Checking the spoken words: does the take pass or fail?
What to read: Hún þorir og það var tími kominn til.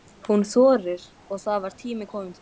pass